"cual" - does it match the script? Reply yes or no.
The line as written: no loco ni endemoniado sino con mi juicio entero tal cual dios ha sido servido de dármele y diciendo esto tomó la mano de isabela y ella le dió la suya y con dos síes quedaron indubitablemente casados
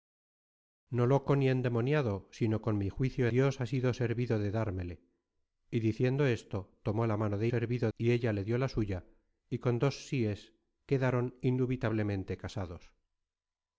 no